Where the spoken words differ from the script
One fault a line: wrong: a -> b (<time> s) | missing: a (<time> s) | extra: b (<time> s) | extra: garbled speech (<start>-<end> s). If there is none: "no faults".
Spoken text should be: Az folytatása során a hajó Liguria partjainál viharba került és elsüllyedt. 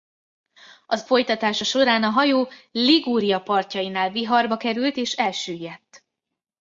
no faults